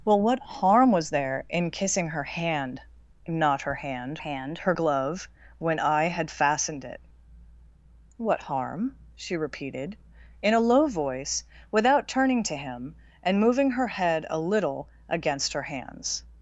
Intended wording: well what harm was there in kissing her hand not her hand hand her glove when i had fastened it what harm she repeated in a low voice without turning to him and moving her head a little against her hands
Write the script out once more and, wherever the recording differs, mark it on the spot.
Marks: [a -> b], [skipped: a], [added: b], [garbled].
well what harm was there in kissing her hand not her hand hand her glove when i had fastened it what harm she repeated in a low voice without turning to him and moving her head a little against her hands